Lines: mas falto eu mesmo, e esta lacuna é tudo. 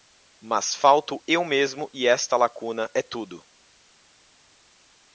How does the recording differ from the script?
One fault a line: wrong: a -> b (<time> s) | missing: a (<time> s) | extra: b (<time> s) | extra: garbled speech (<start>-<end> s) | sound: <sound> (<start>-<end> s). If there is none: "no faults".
no faults